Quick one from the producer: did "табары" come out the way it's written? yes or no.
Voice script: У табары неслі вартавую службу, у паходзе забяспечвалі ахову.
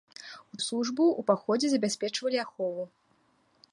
no